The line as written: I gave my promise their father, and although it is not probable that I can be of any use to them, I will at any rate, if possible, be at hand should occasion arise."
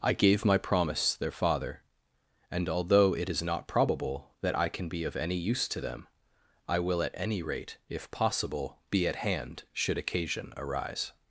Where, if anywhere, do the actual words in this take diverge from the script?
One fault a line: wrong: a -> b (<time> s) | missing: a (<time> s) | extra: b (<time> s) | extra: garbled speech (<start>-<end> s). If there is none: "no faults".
no faults